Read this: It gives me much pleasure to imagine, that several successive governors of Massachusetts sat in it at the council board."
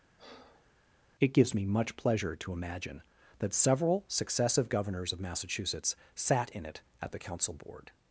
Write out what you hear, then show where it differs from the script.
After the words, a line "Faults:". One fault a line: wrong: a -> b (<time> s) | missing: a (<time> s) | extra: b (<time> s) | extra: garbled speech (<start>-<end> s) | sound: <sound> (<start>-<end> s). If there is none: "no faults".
It gives me much pleasure to imagine, that several successive governors of Massachusetts sat in it at the council board."
Faults:
sound: breath (0.2-0.7 s)